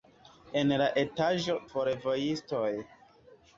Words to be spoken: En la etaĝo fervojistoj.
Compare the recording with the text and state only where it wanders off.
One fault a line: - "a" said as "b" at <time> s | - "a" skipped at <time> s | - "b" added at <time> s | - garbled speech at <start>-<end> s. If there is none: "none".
none